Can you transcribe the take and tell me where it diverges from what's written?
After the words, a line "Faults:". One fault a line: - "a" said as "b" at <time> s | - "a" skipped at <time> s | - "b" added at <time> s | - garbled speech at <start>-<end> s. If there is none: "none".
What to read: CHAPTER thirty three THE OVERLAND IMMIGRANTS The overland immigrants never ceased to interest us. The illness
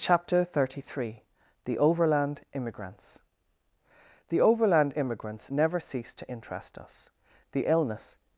CHAPTER thirty three THE OVERLAND IMMIGRANTS The overland immigrants never ceased to interest us. The illness
Faults:
none